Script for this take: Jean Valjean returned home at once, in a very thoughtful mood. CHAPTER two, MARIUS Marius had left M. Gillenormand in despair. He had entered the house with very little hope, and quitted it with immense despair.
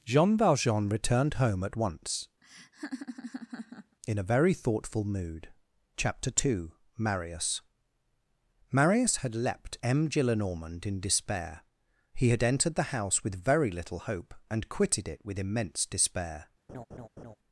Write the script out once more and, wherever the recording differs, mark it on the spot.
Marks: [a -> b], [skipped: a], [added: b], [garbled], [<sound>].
Jean Valjean returned home at once, [laugh] in a very thoughtful mood. CHAPTER two, MARIUS Marius had [left -> leapt] M. Gillenormand in despair. He had entered the house with very little hope, and quitted it with immense despair. [laugh]